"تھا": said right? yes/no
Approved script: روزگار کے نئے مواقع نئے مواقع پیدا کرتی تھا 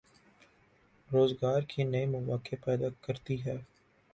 no